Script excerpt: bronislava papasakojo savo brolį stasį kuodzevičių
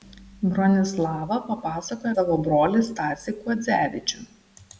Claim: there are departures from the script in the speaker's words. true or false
false